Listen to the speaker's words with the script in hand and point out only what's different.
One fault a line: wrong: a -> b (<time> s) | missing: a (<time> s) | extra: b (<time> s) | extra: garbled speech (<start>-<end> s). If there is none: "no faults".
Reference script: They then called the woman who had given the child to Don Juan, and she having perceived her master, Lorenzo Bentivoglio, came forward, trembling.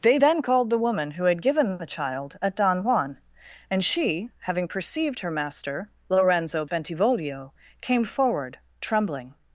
wrong: to -> at (2.4 s)